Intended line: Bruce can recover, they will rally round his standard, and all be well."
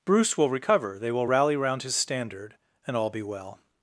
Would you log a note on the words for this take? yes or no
yes